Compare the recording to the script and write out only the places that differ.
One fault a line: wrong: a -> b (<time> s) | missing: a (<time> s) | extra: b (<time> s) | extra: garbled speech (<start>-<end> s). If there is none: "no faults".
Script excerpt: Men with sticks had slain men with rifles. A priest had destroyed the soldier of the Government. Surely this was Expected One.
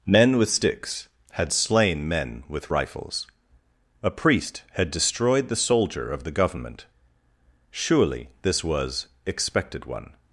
no faults